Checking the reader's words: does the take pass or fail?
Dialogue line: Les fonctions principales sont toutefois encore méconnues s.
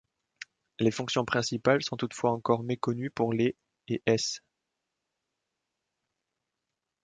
fail